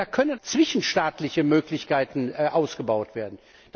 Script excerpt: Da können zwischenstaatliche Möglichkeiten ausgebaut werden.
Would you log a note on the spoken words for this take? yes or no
no